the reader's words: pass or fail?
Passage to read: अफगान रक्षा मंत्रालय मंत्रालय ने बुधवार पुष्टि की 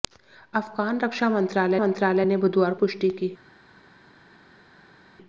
pass